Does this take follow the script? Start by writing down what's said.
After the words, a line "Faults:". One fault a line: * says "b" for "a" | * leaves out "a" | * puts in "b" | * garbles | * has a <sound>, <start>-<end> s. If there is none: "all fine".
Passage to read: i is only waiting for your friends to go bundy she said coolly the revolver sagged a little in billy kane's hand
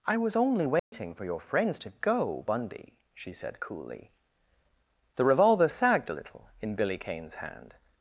i was only waiting for your friends to go bundy she said coolly the revolver sagged a little in billy kane's hand
Faults:
* says "was" for "is"
* has a dropout, 0.8-0.9 s